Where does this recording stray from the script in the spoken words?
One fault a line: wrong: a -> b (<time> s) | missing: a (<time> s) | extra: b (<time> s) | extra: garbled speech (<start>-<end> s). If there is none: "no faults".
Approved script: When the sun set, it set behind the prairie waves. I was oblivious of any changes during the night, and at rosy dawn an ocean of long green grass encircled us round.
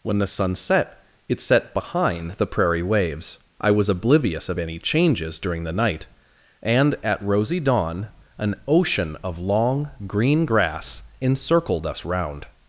no faults